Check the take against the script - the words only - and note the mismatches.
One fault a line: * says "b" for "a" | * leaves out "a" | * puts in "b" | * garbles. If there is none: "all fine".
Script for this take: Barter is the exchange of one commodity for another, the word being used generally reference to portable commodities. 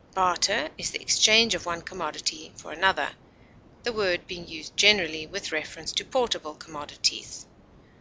* puts in "with"